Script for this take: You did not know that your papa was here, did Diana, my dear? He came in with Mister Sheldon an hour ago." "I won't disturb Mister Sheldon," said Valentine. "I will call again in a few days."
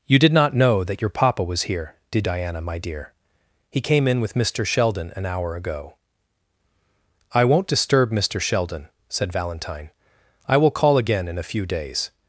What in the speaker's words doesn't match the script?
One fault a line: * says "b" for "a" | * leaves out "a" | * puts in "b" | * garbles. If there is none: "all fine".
all fine